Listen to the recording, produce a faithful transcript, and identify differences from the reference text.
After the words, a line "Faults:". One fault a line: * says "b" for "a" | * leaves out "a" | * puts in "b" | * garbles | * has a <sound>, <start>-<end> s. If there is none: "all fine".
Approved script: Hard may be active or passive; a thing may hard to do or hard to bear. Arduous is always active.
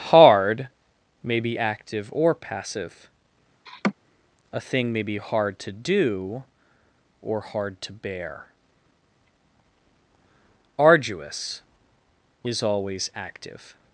Hard may be active or passive; a thing may be hard to do or hard to bear. Arduous is always active.
Faults:
* has a laugh, 3.7-3.9 s
* puts in "be"